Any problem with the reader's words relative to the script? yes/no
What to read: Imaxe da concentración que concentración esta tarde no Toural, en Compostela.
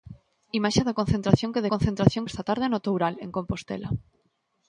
no